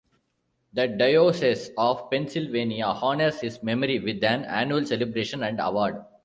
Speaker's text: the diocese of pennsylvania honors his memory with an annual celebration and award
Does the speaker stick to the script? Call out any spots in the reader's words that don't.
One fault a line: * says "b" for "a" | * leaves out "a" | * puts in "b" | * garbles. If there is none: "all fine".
all fine